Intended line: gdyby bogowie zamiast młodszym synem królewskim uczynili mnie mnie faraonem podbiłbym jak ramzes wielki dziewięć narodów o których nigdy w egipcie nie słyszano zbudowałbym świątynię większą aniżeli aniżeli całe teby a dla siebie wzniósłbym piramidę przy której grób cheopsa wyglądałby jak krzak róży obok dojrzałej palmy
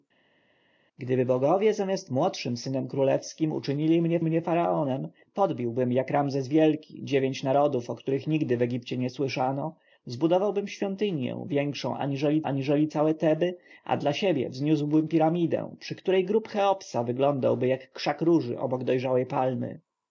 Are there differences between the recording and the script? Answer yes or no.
no